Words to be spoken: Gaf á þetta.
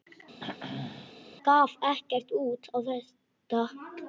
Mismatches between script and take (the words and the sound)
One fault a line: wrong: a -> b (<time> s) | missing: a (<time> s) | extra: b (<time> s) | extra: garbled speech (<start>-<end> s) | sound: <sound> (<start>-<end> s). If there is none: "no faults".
sound: throat clearing (0.4-1.1 s)
extra: ekkert út (1.9 s)